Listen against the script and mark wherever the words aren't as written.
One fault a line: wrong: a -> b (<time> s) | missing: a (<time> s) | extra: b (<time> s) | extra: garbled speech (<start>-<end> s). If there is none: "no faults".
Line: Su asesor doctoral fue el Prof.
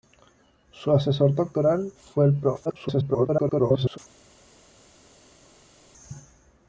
extra: garbled speech (2.6-4.0 s)